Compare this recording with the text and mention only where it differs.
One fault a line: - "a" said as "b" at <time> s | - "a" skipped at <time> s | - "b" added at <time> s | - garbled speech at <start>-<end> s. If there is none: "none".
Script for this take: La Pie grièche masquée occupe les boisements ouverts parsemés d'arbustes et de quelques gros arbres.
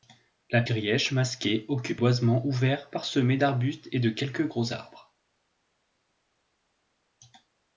- "Pie" skipped at 0.6 s
- "les" skipped at 2.0 s